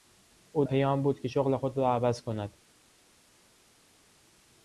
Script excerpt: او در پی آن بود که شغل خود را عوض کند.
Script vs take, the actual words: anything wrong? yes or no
yes